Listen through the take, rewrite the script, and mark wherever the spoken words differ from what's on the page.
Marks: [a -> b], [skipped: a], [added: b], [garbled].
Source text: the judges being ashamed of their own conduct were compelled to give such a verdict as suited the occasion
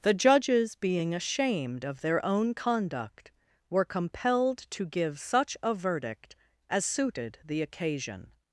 the judges being ashamed of their own conduct were compelled to give such a verdict as suited the occasion